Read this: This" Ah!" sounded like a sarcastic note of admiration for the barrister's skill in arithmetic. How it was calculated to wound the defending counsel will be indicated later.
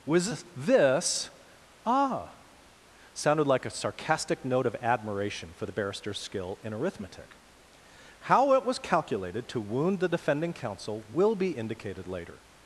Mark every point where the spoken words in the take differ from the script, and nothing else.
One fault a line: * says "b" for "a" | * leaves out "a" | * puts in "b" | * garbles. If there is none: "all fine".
* puts in "was"